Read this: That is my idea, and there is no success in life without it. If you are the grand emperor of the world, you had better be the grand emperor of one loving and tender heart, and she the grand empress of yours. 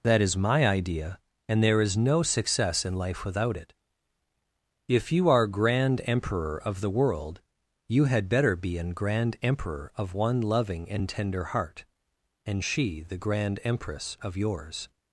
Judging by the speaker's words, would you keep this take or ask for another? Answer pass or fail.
fail